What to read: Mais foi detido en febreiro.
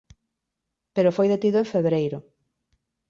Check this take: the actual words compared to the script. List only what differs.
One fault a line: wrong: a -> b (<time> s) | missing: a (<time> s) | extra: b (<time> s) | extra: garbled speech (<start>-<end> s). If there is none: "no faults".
wrong: Mais -> Pero (0.9 s)